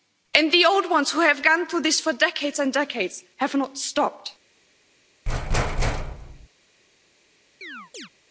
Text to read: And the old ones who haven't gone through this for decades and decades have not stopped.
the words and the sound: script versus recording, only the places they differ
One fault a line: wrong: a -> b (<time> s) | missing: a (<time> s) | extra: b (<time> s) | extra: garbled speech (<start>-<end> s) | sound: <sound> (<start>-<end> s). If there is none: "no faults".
wrong: haven't -> have (1.2 s)
sound: thud (5.3-6.5 s)
sound: chirp (7.6-8.1 s)